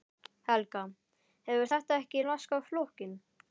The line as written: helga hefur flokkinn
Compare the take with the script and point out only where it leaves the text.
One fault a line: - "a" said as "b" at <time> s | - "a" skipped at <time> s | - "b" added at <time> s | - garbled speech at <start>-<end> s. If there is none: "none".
- "þetta ekki laskað" added at 1.7 s